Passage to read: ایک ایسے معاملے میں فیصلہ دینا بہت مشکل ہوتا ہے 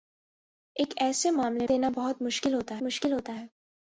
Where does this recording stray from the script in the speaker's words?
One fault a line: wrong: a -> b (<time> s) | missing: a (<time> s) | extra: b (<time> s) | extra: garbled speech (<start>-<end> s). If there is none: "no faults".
wrong: میں فیصلہ دینا بہت -> دینا بہت مشکل ہوتا (1.7 s)